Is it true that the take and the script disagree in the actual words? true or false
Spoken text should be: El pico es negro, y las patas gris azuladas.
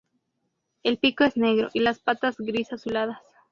false